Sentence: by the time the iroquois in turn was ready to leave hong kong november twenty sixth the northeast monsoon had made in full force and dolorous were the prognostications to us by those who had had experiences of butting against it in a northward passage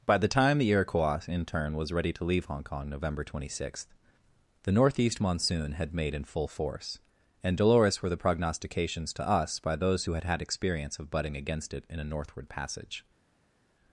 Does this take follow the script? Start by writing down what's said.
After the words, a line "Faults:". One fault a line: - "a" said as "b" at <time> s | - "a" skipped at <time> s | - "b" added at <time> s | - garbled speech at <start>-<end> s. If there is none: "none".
by the time the iroquois in turn was ready to leave hong kong november twenty sixth the northeast monsoon had made in full force and dolorous were the prognostications to us by those who had had experience of butting against it in a northward passage
Faults:
- "experiences" said as "experience" at 10.4 s